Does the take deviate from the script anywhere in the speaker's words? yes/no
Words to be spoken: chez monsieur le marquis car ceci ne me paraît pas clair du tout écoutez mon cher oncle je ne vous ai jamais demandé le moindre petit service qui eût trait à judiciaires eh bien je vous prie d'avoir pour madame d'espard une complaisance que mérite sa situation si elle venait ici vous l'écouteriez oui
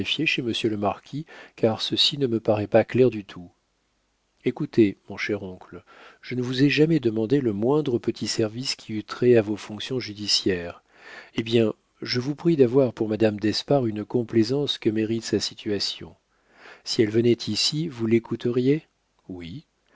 yes